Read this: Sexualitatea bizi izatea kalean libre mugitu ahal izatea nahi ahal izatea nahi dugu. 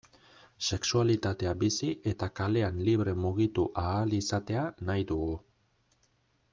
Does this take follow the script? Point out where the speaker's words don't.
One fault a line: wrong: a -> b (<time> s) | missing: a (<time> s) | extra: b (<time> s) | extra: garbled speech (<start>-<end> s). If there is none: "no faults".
wrong: izatea -> eta (2.1 s)
missing: ahal izatea nahi (5.1 s)